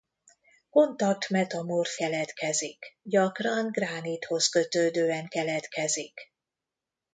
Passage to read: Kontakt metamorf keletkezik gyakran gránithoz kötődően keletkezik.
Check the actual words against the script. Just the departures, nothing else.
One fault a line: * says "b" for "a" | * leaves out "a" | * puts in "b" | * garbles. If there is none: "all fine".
all fine